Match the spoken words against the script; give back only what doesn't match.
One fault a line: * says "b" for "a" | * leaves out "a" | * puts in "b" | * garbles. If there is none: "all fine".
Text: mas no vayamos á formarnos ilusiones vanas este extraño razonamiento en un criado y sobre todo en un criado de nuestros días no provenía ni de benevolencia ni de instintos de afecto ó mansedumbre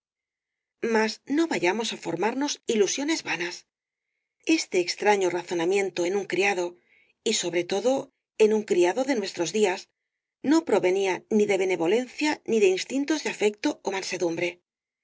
all fine